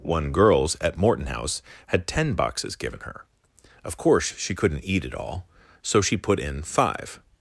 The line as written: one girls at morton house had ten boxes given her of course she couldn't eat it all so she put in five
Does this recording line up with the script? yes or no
yes